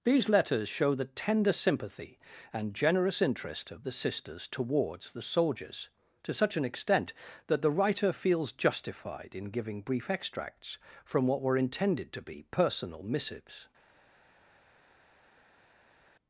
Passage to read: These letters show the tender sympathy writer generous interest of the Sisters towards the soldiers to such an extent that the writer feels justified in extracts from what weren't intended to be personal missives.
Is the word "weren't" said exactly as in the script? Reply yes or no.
no